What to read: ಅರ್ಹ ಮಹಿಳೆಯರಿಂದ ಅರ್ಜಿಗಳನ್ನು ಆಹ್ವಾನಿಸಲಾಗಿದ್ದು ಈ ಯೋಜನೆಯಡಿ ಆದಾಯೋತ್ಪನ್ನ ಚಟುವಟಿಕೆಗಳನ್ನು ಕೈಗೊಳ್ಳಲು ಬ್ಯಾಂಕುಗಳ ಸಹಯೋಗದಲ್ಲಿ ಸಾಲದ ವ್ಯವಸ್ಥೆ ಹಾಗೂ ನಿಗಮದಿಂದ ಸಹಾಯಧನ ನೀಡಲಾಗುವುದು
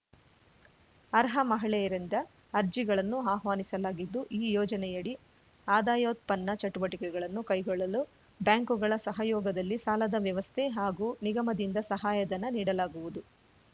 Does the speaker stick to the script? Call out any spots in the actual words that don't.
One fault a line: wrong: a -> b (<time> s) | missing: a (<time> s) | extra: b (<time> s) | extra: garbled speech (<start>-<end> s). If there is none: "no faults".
no faults